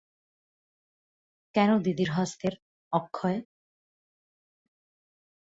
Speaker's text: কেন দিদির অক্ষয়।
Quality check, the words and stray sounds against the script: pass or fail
fail